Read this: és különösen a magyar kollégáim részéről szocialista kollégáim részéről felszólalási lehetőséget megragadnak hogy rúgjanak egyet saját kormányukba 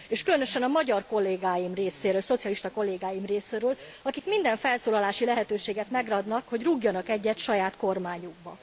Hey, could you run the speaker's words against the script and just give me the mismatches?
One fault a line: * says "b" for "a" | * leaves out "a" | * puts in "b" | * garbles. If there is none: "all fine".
* puts in "akik minden"